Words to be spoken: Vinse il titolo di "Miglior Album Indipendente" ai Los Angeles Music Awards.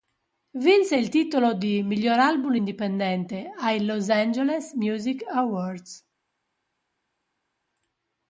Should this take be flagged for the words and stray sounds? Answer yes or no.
no